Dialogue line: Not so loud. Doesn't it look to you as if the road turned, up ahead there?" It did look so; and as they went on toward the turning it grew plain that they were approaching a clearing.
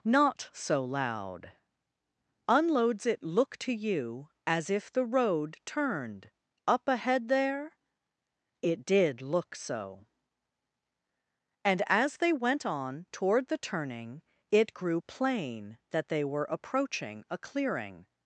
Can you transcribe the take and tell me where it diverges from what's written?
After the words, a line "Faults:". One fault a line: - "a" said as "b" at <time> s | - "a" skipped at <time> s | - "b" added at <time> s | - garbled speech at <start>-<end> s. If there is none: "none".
Not so loud. Unloads it look to you as if the road turned, up ahead there?" It did look so; and as they went on toward the turning it grew plain that they were approaching a clearing.
Faults:
- "Doesn't" said as "Unloads" at 2.5 s